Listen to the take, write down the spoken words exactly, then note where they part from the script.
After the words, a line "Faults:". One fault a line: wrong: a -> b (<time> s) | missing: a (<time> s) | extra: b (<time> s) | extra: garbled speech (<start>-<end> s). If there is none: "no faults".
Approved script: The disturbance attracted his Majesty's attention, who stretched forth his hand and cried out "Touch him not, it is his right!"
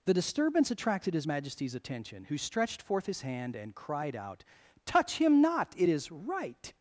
The disturbance attracted his Majesty's attention, who stretched forth his hand and cried out "Touch him not, it is right!"
Faults:
missing: his (6.1 s)